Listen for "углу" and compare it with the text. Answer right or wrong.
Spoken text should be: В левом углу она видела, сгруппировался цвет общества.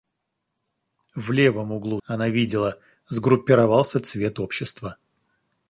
right